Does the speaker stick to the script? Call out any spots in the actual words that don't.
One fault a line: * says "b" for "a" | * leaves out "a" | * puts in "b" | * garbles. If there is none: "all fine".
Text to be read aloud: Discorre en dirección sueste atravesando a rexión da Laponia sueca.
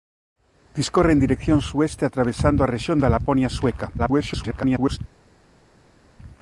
* garbles